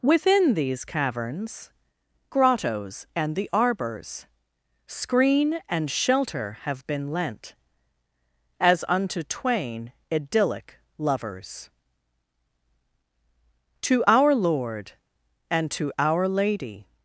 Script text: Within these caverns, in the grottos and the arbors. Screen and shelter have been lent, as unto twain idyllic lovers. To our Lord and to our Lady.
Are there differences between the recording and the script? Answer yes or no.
yes